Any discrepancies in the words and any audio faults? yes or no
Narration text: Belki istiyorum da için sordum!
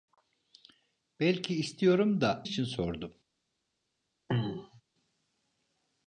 yes